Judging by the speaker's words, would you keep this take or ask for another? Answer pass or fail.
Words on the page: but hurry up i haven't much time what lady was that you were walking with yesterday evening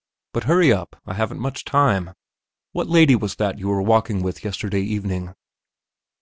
pass